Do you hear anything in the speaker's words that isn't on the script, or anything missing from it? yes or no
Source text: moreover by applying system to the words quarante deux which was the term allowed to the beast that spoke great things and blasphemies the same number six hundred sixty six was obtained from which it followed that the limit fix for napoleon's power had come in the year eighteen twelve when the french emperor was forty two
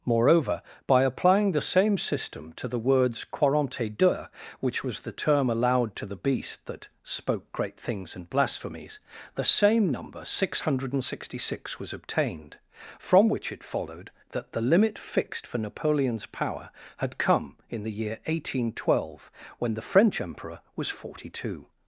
yes